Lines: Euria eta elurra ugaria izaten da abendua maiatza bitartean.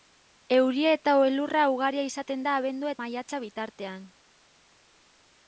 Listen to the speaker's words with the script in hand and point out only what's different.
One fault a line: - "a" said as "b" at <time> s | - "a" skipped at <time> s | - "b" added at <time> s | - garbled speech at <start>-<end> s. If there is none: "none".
none